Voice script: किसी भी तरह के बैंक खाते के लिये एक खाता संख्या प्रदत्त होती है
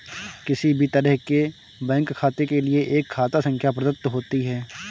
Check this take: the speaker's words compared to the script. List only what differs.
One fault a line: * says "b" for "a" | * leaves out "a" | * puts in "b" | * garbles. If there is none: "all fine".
all fine